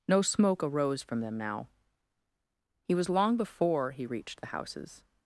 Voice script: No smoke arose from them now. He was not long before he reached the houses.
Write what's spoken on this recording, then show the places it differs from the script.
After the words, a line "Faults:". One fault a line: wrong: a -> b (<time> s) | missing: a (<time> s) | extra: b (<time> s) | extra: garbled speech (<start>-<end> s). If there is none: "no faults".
No smoke arose from them now. He was long before he reached the houses.
Faults:
missing: not (3.1 s)